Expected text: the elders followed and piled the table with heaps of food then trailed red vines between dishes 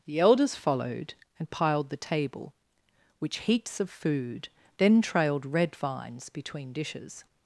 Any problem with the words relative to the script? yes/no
yes